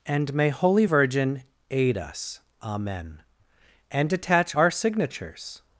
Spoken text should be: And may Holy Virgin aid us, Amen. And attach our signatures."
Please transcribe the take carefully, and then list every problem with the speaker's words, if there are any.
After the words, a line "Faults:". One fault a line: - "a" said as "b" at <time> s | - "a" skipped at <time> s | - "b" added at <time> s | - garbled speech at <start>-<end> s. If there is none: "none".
And may Holy Virgin aid us, Amen. And attach our signatures."
Faults:
none